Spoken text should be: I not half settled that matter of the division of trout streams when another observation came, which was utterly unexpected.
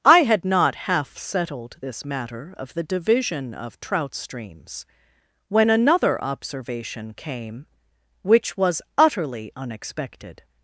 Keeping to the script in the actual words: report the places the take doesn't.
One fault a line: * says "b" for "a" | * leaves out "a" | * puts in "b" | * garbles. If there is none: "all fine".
* puts in "had"
* says "this" for "that"